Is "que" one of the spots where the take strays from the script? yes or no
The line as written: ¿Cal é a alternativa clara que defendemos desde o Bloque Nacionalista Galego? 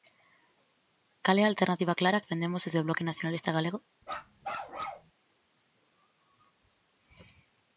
yes